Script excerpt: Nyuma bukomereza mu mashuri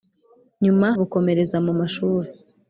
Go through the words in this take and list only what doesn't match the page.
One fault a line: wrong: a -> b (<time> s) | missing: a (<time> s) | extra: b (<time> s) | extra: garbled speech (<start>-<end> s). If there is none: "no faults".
no faults